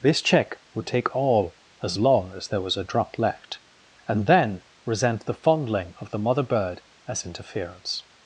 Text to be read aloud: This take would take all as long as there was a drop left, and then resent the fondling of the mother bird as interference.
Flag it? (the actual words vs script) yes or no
yes